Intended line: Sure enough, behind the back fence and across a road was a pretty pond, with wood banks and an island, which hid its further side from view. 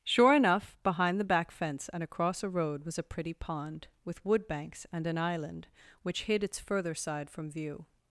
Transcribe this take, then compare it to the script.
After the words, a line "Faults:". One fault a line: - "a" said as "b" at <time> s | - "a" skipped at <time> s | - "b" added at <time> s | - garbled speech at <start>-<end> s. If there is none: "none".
Sure enough, behind the back fence and across a road was a pretty pond, with wood banks and an island, which hid its further side from view.
Faults:
none